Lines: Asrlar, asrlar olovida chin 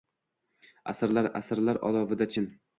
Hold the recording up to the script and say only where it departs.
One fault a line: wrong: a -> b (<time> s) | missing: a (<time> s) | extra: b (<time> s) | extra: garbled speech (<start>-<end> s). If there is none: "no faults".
no faults